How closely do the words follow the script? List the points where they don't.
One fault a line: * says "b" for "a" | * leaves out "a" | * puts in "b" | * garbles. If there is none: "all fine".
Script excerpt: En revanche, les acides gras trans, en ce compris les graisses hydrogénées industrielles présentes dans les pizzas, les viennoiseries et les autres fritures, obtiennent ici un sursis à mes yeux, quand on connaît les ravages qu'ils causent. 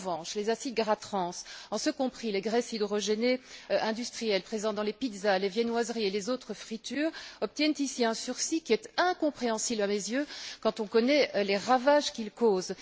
* puts in "qui est incompréhensible"